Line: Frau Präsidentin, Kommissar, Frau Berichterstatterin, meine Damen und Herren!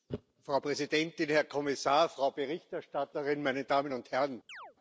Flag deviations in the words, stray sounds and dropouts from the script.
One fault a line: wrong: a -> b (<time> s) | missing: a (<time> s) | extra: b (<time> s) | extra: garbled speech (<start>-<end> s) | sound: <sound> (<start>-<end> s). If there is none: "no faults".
extra: Herr (1.3 s)
sound: chirp (4.5-4.8 s)